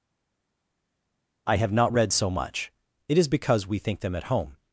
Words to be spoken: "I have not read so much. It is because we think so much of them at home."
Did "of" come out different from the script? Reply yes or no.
yes